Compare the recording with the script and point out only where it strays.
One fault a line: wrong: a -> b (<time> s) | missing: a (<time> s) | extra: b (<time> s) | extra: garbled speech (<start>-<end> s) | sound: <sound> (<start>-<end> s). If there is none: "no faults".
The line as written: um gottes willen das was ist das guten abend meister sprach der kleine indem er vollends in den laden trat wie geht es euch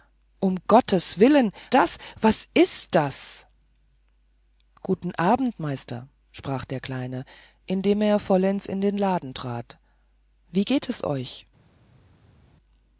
no faults